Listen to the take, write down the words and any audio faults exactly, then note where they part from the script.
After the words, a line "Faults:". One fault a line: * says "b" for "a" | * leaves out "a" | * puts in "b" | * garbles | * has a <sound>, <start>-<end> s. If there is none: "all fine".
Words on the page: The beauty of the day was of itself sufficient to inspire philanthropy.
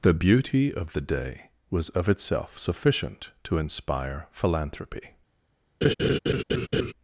The beauty of the day was of itself sufficient to inspire philanthropy.
Faults:
* has a laugh, 5.8-6.9 s